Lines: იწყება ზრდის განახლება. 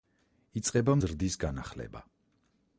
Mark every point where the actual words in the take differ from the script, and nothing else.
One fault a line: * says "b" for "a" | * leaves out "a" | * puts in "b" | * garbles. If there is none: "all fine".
all fine